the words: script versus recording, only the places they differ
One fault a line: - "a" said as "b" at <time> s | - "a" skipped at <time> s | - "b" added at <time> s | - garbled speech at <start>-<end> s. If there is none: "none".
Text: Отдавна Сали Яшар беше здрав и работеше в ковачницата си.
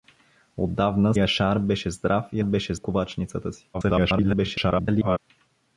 - "Сали" skipped at 1.1 s
- "работеше" said as "беше" at 2.4 s
- garbled speech at 3.7-5.2 s